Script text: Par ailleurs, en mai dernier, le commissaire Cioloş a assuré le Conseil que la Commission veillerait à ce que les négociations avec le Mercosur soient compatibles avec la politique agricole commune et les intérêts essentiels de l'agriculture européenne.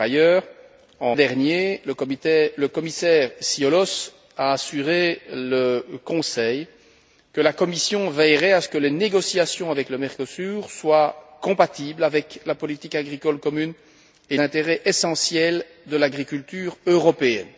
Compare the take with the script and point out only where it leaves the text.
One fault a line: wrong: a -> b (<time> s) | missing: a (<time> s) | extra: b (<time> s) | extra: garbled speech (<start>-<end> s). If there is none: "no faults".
missing: mai (1.1 s)
missing: les (14.4 s)